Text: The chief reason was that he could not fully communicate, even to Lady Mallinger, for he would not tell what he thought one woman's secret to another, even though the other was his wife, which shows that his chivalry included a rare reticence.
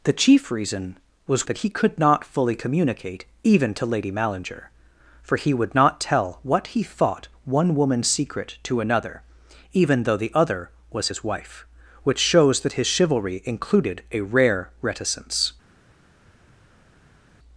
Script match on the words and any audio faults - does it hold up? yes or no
yes